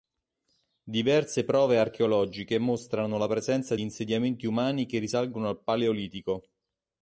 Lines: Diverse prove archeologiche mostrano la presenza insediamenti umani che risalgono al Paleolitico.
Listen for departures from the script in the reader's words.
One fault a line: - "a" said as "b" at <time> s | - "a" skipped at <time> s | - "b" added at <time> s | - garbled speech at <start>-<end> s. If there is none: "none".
none